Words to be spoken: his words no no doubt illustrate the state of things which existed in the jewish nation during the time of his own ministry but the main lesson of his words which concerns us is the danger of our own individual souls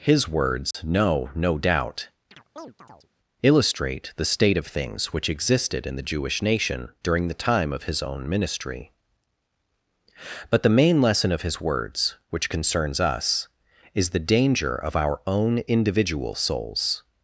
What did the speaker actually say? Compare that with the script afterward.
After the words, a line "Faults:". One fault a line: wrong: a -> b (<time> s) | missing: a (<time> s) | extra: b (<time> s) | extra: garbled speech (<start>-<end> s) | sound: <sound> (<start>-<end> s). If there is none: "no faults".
his words no no doubt illustrate the state of things which existed in the jewish nation during the time of his own ministry but the main lesson of his words which concerns us is the danger of our own individual souls
Faults:
sound: dropout (0.7-0.7 s)
sound: chirp (2.3-3.1 s)